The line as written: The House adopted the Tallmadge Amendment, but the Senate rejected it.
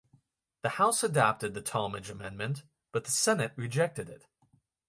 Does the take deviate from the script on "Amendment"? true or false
false